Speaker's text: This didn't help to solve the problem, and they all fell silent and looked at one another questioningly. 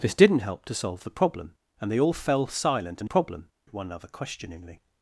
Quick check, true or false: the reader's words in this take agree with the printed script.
false